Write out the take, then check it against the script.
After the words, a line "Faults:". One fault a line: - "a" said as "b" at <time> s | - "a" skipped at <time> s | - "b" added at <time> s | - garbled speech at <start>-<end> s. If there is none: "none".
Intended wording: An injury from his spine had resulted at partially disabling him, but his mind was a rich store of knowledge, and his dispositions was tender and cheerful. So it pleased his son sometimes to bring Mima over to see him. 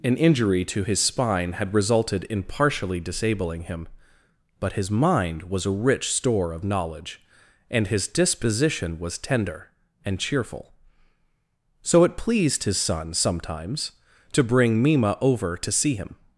An injury to his spine had resulted in partially disabling him, but his mind was a rich store of knowledge, and his disposition was tender and cheerful. So it pleased his son sometimes to bring Mima over to see him.
Faults:
- "from" said as "to" at 0.7 s
- "at" said as "in" at 2.2 s
- "dispositions" said as "disposition" at 8.1 s